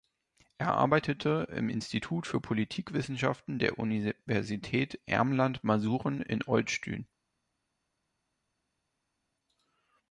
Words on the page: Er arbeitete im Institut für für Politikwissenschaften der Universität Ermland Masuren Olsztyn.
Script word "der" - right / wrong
right